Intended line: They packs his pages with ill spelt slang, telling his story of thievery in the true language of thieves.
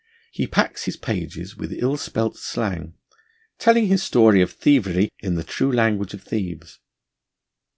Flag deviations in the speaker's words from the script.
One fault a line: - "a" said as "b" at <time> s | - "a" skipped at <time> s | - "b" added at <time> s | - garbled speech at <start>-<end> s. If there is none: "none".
- "They" said as "He" at 0.3 s